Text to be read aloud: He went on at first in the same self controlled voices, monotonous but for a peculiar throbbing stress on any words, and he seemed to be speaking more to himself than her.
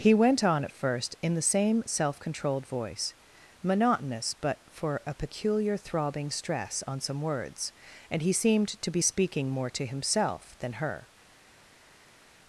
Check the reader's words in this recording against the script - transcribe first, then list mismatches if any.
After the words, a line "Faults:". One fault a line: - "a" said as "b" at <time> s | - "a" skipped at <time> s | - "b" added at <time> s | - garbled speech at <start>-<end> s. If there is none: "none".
He went on at first in the same self controlled voice, monotonous but for a peculiar throbbing stress on some words, and he seemed to be speaking more to himself than her.
Faults:
- "voices" said as "voice" at 2.6 s
- "any" said as "some" at 7.0 s